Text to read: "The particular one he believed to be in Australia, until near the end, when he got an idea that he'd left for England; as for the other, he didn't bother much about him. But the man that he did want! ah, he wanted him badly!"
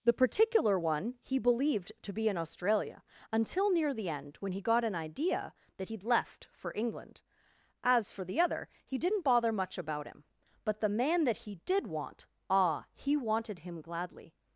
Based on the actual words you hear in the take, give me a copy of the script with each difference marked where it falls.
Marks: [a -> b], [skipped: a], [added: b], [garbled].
"The particular one he believed to be in Australia, until near the end, when he got an idea that he'd left for England; as for the other, he didn't bother much about him. But the man that he did want! ah, he wanted him [badly!" -> gladly]